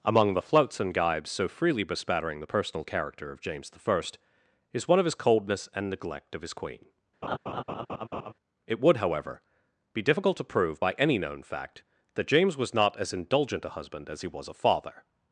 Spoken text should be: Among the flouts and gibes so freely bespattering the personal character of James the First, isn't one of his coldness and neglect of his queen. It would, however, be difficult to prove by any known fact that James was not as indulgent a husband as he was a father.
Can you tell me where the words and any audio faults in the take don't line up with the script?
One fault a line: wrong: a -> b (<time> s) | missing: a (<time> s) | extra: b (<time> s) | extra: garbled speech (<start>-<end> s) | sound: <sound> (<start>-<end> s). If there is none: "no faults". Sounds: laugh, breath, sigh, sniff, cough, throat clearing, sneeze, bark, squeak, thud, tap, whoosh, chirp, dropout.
wrong: isn't -> is (4.7 s)
sound: laugh (7.2-8.3 s)